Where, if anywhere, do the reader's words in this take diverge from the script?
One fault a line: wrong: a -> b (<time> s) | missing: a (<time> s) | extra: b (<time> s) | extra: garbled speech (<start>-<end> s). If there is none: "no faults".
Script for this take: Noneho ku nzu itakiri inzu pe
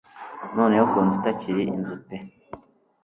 no faults